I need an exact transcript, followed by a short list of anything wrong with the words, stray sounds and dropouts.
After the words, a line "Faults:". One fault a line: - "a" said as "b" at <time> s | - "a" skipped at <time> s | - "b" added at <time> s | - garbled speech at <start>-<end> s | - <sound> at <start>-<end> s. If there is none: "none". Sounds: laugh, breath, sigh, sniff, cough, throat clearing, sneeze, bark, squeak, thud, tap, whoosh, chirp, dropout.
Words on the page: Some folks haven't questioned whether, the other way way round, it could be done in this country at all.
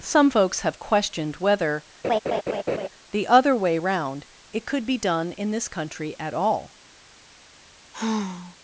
Some folks have questioned whether, the other way round, it could be done in this country at all.
Faults:
- "haven't" said as "have" at 0.6 s
- laugh at 2.0-2.9 s
- "way" skipped at 3.8 s
- sigh at 7.9-8.6 s